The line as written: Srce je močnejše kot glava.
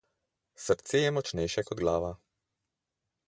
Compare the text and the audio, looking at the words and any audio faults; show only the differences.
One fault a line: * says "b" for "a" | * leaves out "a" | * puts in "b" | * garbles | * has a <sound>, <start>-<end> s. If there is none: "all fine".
all fine